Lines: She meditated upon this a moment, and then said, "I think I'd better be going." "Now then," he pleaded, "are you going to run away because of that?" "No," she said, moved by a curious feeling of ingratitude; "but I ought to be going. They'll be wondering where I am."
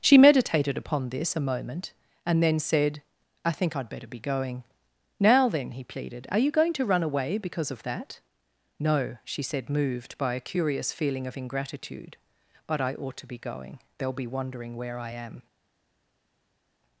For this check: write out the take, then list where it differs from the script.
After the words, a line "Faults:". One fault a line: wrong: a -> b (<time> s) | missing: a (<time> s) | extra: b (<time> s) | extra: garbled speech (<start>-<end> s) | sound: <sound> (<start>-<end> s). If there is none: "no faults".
She meditated upon this a moment, and then said, "I think I'd better be going." "Now then," he pleaded, "are you going to run away because of that?" "No," she said, moved by a curious feeling of ingratitude; "but I ought to be going. They'll be wondering where I am."
Faults:
no faults